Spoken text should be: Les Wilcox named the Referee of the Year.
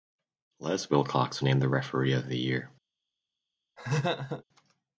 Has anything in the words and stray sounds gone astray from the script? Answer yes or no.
yes